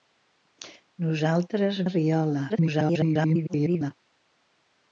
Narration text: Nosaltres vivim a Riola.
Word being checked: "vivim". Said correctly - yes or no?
no